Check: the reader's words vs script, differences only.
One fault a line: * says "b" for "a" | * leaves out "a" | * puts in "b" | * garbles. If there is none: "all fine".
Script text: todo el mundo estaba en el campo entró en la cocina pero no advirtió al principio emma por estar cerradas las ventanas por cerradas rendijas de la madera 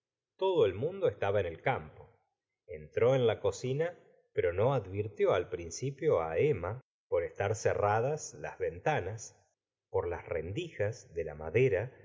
* says "las" for "cerradas"